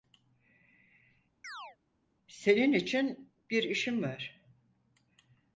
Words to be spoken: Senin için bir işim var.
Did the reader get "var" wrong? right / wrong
right